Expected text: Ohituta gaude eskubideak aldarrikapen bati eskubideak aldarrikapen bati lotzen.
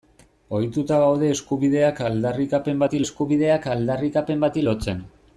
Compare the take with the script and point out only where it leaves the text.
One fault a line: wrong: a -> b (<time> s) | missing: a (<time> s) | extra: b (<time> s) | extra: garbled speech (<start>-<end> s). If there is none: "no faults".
no faults